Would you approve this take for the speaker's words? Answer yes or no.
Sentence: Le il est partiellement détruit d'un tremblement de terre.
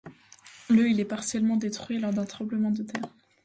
no